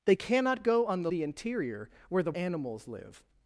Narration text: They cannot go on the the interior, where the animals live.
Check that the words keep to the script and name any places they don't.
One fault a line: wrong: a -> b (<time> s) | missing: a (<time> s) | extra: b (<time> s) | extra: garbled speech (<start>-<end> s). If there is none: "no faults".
no faults